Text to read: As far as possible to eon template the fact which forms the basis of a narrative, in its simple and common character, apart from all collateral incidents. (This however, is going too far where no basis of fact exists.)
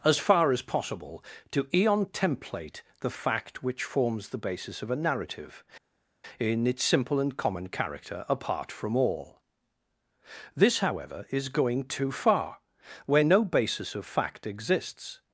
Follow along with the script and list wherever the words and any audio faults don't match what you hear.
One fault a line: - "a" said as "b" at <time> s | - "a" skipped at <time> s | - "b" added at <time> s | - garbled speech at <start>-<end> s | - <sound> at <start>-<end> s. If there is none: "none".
- "collateral incidents" skipped at 9.4 s